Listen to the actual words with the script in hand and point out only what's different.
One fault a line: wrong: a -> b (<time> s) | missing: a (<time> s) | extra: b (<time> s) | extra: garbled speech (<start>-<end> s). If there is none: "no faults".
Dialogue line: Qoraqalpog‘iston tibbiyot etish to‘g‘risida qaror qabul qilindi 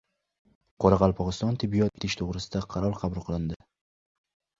no faults